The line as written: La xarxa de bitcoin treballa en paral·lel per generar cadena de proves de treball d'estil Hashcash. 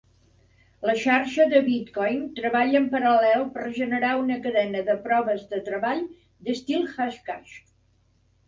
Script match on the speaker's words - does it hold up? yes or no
no